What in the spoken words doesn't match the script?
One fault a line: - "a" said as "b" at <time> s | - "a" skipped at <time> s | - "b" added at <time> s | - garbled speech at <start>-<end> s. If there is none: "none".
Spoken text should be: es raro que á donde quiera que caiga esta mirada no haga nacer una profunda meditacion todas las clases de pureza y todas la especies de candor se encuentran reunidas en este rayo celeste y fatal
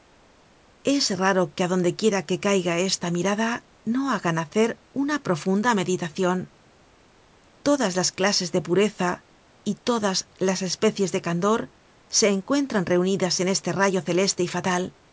- "la" said as "las" at 10.5 s